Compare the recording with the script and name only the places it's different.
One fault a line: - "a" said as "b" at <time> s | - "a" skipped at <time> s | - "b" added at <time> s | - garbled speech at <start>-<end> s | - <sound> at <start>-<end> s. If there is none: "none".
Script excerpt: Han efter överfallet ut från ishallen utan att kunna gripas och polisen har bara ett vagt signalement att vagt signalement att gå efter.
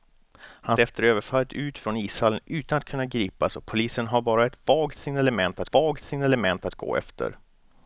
none